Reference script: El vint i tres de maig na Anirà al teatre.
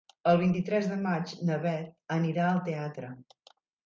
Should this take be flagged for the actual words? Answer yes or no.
yes